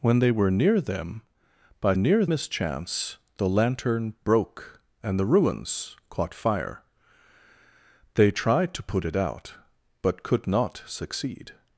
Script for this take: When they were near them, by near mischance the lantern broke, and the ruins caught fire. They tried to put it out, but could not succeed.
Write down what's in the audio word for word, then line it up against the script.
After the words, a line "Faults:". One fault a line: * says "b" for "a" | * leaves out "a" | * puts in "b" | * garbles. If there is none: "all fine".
When they were near them, by near mischance the lantern broke, and the ruins caught fire. They tried to put it out, but could not succeed.
Faults:
all fine